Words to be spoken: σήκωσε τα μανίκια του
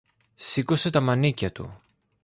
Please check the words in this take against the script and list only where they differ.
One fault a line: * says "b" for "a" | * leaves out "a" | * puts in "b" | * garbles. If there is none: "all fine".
all fine